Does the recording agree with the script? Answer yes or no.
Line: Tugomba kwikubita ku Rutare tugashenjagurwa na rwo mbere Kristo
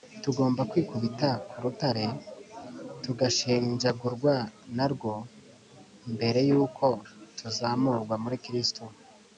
no